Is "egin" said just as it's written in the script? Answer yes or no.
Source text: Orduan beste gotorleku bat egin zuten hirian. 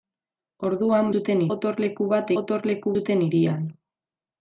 no